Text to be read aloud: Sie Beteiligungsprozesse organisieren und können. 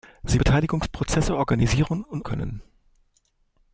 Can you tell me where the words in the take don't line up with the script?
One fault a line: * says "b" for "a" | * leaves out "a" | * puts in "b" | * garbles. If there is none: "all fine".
all fine